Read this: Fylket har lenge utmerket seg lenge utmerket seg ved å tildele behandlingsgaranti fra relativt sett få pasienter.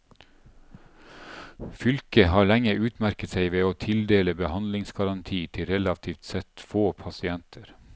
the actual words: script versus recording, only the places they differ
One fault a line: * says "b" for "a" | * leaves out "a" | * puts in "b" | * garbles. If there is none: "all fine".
* leaves out "lenge utmerket seg"
* says "til" for "fra"